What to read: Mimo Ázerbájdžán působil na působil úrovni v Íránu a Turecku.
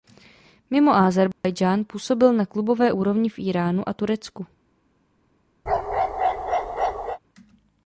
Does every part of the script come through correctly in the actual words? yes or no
no